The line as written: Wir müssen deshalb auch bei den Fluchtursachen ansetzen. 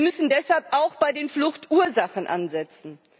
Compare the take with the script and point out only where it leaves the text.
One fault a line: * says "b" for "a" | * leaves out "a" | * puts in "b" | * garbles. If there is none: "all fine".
all fine